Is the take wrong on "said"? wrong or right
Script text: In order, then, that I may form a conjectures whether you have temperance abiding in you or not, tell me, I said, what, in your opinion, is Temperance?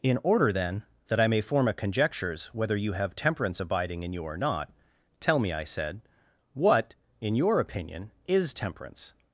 right